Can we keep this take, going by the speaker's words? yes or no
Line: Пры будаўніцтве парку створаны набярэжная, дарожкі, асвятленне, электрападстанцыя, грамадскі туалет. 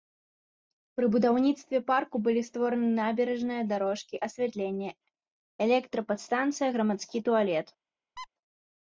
no